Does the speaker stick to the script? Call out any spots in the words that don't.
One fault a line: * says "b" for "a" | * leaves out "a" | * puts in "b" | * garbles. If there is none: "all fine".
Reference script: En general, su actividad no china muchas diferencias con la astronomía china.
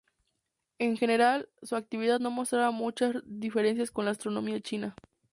* says "mostraba" for "china"